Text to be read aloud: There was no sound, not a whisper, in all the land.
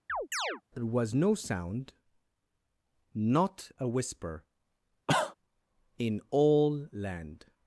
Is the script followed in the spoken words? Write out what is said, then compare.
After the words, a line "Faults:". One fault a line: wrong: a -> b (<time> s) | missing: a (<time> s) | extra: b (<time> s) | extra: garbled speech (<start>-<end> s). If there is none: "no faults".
There was no sound, not a whisper, in all land.
Faults:
missing: the (6.9 s)